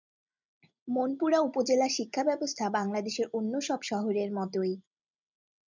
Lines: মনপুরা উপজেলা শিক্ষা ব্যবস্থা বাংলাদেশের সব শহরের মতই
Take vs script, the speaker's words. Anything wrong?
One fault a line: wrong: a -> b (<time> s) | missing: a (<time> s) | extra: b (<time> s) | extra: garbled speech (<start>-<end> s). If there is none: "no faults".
extra: অন্য (3.3 s)